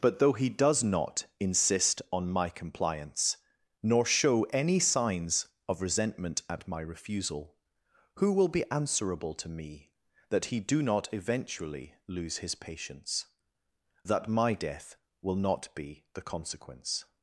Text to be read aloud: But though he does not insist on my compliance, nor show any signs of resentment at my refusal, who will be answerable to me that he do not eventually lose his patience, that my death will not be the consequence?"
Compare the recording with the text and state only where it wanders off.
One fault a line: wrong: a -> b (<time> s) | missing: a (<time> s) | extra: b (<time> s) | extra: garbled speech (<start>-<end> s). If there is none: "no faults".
no faults